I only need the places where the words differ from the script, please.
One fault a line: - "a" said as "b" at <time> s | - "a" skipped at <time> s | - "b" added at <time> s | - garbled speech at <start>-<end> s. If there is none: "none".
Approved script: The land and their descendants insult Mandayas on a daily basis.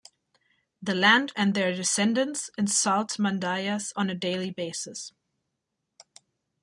none